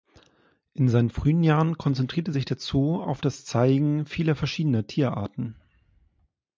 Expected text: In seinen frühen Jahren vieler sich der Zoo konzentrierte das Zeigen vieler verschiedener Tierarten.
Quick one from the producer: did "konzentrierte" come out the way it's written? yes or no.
no